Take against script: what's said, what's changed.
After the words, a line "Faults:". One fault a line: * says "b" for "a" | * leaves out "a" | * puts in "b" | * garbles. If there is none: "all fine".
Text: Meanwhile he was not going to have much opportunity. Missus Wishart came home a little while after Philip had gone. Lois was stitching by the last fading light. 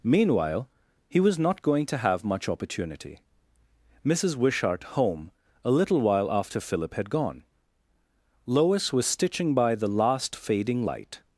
Meanwhile he was not going to have much opportunity. Missus Wishart home a little while after Philip had gone. Lois was stitching by the last fading light.
Faults:
* leaves out "came"